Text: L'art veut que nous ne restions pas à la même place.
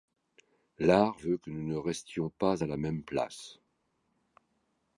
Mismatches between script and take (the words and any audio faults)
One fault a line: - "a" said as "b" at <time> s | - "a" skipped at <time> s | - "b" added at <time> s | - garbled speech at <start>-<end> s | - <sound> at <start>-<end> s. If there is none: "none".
none